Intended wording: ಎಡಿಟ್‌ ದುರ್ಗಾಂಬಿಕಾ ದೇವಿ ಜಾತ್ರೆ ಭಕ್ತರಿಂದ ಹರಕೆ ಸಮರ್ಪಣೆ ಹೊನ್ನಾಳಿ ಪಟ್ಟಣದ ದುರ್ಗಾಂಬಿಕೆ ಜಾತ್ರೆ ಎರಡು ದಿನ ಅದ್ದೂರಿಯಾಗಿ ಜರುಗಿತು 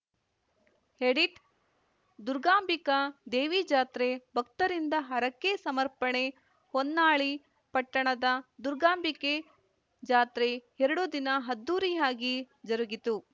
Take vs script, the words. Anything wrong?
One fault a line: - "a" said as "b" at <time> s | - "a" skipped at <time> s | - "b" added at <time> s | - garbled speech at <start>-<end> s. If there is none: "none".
none